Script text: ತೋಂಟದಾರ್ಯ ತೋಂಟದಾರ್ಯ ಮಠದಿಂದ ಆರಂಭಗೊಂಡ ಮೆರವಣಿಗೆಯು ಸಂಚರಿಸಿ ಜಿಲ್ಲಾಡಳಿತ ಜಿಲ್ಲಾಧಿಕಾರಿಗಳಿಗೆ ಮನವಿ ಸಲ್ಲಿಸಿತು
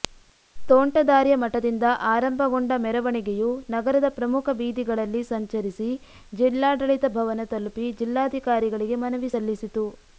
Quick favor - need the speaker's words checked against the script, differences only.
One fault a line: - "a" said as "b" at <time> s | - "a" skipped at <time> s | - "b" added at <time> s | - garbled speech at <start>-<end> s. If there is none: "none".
- "ತೋಂಟದಾರ್ಯ" skipped at 1.3 s
- "ನಗರದ ಪ್ರಮುಖ ಬೀದಿಗಳಲ್ಲಿ" added at 3.7 s
- "ಭವನ ತಲುಪಿ" added at 7.2 s